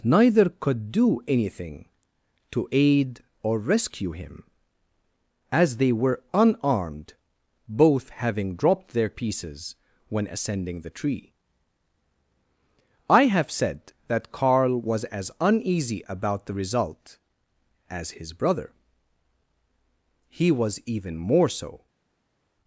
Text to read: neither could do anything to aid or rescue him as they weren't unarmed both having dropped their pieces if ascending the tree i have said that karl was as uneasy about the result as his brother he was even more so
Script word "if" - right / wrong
wrong